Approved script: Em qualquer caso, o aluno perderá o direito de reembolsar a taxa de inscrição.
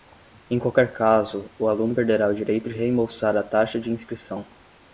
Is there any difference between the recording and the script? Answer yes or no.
no